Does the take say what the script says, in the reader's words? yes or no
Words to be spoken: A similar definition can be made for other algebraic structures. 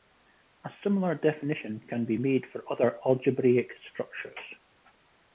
yes